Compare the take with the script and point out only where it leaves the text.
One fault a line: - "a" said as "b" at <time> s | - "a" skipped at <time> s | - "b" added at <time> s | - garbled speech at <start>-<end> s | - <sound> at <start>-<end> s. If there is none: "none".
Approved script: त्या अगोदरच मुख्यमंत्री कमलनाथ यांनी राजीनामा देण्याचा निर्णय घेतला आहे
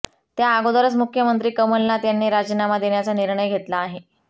none